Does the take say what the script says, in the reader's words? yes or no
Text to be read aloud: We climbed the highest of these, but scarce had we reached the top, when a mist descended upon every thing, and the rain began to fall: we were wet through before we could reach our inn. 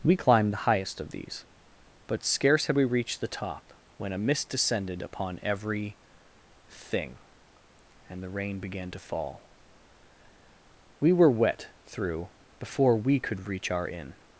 yes